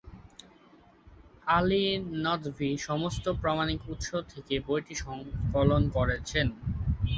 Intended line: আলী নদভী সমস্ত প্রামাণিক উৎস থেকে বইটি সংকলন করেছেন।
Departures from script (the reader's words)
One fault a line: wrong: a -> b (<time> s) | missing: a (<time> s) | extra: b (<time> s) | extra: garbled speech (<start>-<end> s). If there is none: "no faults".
no faults